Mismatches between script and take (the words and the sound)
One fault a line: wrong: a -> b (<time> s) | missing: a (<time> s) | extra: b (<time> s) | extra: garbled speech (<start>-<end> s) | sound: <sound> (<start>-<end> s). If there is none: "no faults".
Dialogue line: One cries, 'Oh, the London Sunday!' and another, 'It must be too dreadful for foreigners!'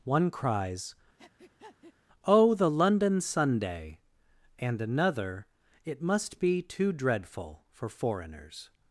sound: breath (1.2-1.9 s)